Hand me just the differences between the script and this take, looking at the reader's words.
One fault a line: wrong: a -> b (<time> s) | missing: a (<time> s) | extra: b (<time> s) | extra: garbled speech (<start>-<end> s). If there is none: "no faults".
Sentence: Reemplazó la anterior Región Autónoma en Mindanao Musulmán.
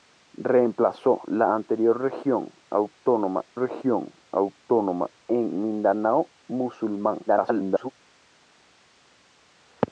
extra: Región Autónoma (3.6 s)
extra: garbled speech (7.3-7.9 s)